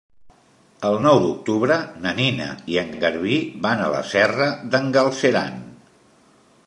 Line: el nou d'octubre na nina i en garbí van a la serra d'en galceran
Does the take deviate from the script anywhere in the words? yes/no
yes